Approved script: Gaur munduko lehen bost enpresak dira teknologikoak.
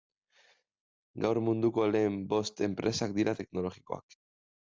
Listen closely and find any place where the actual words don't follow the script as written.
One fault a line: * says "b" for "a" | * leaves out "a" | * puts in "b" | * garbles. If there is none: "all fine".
all fine